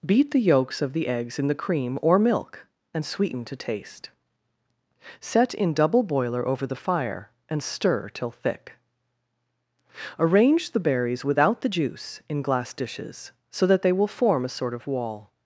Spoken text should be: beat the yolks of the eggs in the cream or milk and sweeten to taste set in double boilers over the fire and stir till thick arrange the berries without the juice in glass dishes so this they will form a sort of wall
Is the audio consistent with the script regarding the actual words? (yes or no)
no